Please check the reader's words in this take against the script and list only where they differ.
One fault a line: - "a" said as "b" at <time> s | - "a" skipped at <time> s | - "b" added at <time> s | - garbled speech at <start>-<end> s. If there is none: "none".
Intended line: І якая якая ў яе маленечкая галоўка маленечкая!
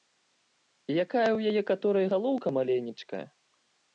- "якая" skipped at 1.2 s
- "маленечкая" said as "каторай" at 1.7 s